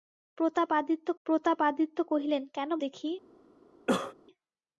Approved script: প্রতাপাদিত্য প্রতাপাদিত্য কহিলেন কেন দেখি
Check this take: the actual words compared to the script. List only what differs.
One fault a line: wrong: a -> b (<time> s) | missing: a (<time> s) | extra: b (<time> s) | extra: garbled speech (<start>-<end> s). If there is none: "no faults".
no faults